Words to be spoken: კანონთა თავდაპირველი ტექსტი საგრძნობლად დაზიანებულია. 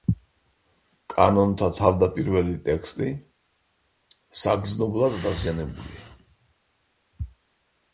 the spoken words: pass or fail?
pass